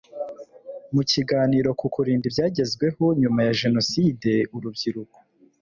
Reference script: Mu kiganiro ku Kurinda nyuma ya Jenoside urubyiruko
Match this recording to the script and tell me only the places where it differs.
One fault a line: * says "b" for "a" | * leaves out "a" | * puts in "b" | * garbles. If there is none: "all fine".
* puts in "ibyagezweho"